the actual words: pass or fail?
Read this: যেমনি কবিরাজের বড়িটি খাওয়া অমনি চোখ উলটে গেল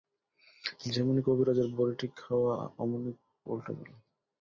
fail